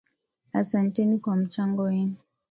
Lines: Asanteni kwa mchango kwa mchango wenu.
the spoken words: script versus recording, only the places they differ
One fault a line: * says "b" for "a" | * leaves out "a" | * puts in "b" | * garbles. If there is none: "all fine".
* leaves out "kwa mchango"